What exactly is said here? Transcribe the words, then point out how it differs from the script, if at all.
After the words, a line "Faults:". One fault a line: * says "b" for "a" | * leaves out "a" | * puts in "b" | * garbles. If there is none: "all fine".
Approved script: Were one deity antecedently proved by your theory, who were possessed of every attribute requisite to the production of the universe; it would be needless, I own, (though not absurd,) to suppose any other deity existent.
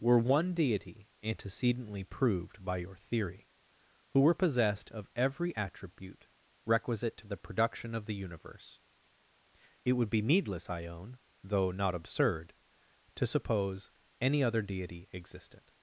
Were one deity antecedently proved by your theory, who were possessed of every attribute requisite to the production of the universe; it would be needless, I own, (though not absurd,) to suppose any other deity existent.
Faults:
all fine